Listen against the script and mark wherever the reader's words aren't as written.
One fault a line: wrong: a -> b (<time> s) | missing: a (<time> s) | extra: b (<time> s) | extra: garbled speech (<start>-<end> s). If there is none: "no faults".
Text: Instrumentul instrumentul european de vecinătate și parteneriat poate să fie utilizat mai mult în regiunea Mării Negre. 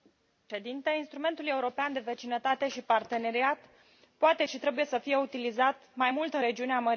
missing: instrumentul (1.5 s)
extra: și trebuie (4.5 s)